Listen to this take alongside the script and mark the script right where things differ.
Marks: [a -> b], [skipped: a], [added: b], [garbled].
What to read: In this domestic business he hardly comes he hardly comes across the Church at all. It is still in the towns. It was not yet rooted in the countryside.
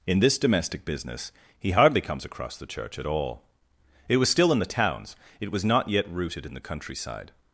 In this domestic business he hardly comes [skipped: he hardly comes] across the Church at all. It [is -> was] still in the towns. It was not yet rooted in the countryside.